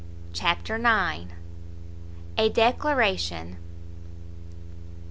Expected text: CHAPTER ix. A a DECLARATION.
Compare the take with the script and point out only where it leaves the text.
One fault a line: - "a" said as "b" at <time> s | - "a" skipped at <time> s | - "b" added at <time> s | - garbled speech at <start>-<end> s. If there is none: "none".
- "a" skipped at 2.5 s